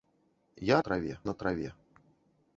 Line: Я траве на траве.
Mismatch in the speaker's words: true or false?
false